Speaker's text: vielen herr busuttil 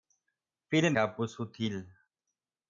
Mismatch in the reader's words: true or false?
false